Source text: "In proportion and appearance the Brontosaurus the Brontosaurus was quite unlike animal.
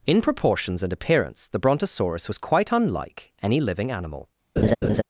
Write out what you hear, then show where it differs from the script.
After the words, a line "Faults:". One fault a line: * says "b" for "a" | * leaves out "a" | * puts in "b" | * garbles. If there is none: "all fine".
"In proportions and appearance the Brontosaurus was quite unlike any living animal.
Faults:
* says "proportions" for "proportion"
* leaves out "the Brontosaurus"
* puts in "any living"